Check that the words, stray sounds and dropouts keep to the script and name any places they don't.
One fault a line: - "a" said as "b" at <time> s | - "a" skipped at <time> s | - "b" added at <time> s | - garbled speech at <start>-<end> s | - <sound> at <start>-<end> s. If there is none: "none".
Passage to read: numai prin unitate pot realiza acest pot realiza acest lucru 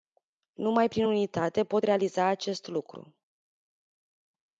- "pot realiza acest" skipped at 2.7 s